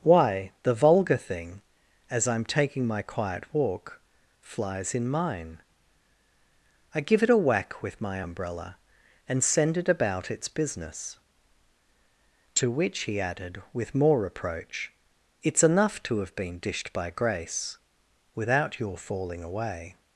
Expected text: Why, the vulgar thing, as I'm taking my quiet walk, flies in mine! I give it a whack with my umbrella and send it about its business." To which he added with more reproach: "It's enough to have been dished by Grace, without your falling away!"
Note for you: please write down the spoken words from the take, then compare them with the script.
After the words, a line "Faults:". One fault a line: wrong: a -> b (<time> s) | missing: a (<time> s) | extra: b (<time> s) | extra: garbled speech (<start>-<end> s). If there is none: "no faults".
Why, the vulgar thing, as I'm taking my quiet walk, flies in mine! I give it a whack with my umbrella and send it about its business." To which he added with more reproach: "It's enough to have been dished by Grace, without your falling away!"
Faults:
no faults